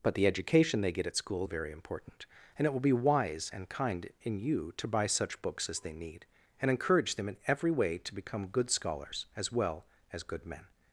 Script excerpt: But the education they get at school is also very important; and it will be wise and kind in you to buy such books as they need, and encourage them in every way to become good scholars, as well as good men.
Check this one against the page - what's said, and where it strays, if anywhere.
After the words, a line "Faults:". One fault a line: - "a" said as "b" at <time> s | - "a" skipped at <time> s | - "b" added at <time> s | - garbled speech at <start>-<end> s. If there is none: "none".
But the education they get at school very important; and it will be wise and kind in you to buy such books as they need, and encourage them in every way to become good scholars, as well as good men.
Faults:
- "is also" skipped at 1.4 s